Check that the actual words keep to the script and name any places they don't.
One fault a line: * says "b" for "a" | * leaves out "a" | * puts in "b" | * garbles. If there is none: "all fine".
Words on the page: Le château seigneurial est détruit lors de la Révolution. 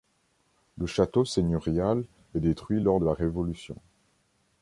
all fine